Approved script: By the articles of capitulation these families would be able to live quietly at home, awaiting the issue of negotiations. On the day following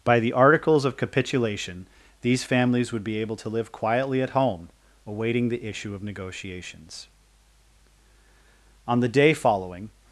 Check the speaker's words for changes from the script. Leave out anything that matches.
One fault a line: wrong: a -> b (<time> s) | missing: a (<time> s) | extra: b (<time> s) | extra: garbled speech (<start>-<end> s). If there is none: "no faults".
no faults